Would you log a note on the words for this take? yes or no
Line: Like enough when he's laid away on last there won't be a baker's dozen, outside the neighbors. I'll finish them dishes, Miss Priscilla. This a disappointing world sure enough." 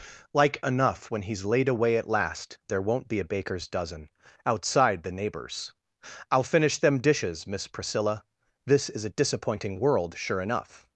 yes